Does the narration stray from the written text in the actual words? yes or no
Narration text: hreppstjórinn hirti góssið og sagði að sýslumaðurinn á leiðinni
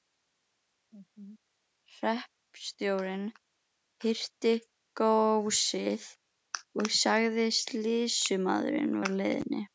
no